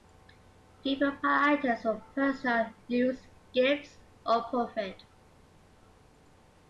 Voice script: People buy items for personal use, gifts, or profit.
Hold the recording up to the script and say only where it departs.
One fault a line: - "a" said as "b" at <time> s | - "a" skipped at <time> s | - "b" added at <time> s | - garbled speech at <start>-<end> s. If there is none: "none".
none